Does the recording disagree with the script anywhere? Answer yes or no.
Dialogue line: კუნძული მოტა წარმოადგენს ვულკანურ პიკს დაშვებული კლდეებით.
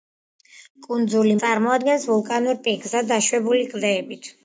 yes